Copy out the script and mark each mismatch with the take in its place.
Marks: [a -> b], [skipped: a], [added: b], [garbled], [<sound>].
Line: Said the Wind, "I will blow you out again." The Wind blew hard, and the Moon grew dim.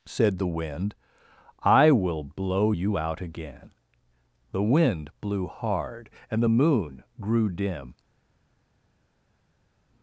Said the Wind, "I will blow you out again." The Wind blew hard, and the Moon grew dim.